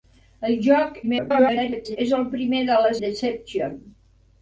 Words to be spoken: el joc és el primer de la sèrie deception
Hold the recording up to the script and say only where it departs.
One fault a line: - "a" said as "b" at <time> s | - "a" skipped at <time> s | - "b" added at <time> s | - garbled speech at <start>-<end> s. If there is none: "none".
- garbled speech at 1.0-2.0 s
- "sèrie" skipped at 2.9 s